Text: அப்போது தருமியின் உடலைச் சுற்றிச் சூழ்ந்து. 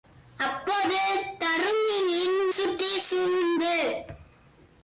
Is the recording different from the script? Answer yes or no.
yes